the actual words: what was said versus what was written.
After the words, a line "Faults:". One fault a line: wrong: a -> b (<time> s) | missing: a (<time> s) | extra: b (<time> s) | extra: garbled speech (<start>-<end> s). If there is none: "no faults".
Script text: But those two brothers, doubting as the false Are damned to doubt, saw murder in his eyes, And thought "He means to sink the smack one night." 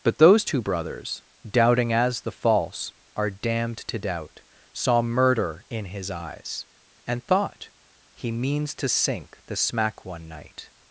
But those two brothers, doubting as the false Are damned to doubt, saw murder in his eyes, And thought "He means to sink the smack one night."
Faults:
no faults